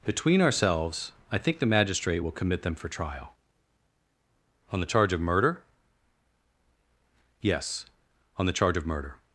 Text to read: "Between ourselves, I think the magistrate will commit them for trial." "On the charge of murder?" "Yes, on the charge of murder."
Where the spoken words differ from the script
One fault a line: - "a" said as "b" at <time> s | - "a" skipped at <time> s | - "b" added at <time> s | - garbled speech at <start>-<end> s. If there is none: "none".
none